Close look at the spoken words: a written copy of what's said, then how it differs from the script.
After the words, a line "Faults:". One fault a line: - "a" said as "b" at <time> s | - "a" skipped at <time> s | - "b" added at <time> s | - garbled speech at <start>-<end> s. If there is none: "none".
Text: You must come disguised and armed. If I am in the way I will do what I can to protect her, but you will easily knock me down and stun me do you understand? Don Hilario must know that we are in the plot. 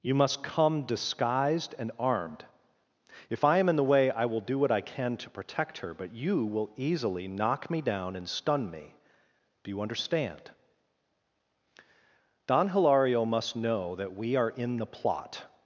You must come disguised and armed. If I am in the way I will do what I can to protect her, but you will easily knock me down and stun me do you understand? Don Hilario must know that we are in the plot.
Faults:
none